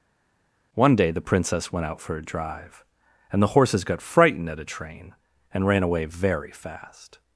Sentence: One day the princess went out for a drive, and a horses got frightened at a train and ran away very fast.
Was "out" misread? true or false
false